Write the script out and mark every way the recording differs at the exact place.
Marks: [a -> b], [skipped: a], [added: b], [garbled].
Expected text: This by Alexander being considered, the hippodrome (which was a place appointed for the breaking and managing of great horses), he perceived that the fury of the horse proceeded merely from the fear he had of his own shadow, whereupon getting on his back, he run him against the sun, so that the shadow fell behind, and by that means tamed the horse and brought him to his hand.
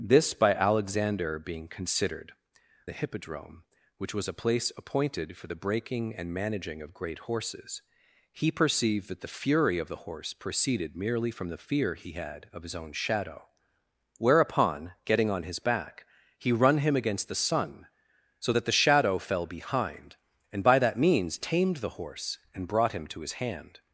This by Alexander being considered, the hippodrome (which was a place appointed for the breaking and managing of great horses), he perceived that the fury of the horse proceeded merely from the fear he had of his own shadow, whereupon getting on his back, he run him against the sun, so that the shadow fell behind, and by that means tamed the horse and brought him to his hand.